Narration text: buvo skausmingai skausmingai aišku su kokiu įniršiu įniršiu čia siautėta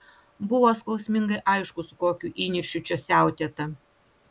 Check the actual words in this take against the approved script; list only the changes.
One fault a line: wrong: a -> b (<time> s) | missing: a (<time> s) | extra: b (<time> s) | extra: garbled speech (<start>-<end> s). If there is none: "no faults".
missing: skausmingai (1.4 s)
missing: įniršiu (2.8 s)